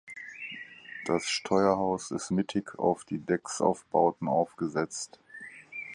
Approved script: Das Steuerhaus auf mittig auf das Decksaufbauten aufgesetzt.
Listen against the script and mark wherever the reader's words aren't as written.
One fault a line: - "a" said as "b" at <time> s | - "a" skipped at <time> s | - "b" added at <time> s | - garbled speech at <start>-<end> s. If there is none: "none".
- "auf" said as "ist" at 2.1 s
- "das" said as "die" at 3.0 s